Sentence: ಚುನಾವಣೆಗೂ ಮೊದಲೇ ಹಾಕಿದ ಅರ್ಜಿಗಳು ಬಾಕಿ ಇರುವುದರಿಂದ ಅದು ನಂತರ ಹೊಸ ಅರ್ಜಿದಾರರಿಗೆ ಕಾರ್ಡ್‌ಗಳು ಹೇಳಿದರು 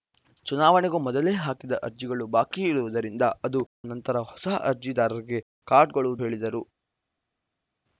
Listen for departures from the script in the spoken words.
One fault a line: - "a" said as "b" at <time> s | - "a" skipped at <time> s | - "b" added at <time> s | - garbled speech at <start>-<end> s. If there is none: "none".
none